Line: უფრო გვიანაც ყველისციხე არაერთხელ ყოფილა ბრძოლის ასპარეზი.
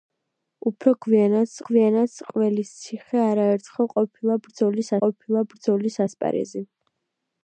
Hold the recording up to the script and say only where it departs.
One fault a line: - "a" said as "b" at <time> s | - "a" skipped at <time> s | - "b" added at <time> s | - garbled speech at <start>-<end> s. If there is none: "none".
- "გვიანაც" added at 1.7 s
- "ყოფილა ბრძოლის" added at 5.0 s